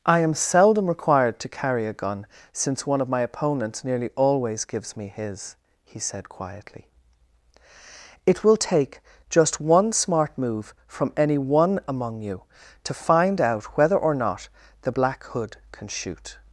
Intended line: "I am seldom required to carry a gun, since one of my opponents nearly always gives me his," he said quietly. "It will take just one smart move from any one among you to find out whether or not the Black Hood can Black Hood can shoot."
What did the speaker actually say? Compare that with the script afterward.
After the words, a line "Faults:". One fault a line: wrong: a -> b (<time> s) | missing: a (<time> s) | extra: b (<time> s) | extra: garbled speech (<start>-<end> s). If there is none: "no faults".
"I am seldom required to carry a gun, since one of my opponents nearly always gives me his," he said quietly. "It will take just one smart move from any one among you to find out whether or not the Black Hood can shoot."
Faults:
missing: Black Hood can (15.9 s)